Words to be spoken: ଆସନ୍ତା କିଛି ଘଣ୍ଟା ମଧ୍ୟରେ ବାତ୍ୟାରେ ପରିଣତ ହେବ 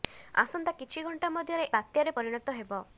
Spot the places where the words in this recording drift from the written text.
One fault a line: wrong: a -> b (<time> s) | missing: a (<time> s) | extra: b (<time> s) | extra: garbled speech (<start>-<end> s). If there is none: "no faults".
no faults